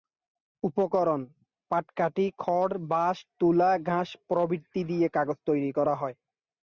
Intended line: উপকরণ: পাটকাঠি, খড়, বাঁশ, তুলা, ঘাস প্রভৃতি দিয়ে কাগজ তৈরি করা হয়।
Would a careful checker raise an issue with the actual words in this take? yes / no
no